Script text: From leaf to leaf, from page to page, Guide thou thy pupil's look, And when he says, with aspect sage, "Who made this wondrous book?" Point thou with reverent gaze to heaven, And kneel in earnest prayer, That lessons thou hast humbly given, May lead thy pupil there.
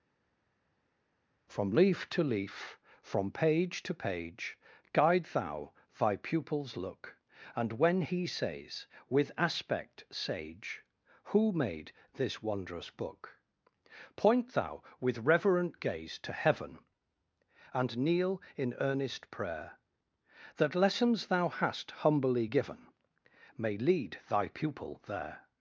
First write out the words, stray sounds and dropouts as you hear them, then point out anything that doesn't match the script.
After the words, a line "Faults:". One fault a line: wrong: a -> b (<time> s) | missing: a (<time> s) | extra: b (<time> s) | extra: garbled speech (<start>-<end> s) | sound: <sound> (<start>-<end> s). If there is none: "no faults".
From leaf to leaf, from page to page, Guide thou thy pupil's look, And when he says, with aspect sage, "Who made this wondrous book?" Point thou with reverent gaze to heaven, And kneel in earnest prayer, That lessons thou hast humbly given, May lead thy pupil there.
Faults:
no faults